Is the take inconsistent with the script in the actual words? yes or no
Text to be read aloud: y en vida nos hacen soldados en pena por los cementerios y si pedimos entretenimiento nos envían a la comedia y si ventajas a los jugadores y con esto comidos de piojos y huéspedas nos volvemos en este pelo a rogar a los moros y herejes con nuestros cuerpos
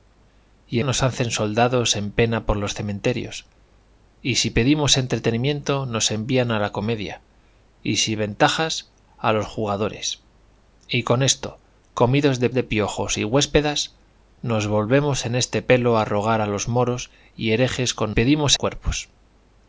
yes